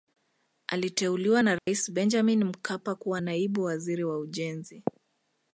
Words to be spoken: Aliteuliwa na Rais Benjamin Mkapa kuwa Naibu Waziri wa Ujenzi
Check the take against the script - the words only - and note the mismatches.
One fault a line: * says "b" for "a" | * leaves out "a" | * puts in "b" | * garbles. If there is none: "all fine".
all fine